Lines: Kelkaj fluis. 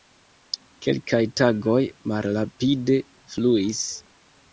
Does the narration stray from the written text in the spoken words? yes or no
yes